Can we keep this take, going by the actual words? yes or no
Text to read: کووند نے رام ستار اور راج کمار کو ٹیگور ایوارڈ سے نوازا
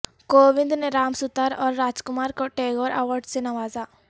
yes